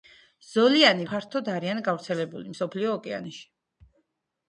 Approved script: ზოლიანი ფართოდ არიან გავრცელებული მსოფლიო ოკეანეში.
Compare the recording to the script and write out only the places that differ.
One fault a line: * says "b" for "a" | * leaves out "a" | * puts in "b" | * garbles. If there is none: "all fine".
all fine